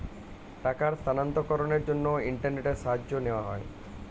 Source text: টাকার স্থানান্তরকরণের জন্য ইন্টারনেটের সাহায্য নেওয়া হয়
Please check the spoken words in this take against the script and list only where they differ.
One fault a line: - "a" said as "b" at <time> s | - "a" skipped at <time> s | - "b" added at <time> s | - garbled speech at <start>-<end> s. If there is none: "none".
none